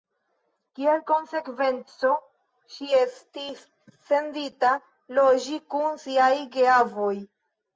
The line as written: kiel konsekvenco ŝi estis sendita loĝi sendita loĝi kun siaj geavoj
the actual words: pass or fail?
fail